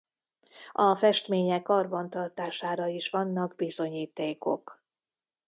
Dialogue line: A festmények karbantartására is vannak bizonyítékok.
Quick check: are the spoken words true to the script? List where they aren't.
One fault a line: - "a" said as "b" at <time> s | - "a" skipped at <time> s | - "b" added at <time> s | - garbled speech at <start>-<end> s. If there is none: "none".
none